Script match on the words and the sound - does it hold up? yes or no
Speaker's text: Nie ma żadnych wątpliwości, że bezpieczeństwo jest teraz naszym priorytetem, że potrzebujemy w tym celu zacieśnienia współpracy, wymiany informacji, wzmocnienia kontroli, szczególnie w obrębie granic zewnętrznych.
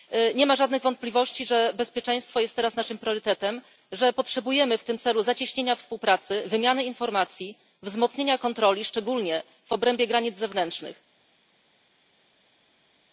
yes